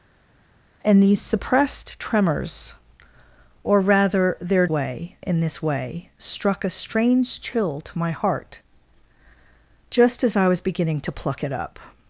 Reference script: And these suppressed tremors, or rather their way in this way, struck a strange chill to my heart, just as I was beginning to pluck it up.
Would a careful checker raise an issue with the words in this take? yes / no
no